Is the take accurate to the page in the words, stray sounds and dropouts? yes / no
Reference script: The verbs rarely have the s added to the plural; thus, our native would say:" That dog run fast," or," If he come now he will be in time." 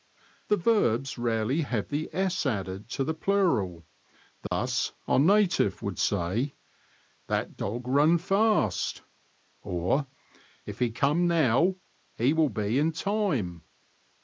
no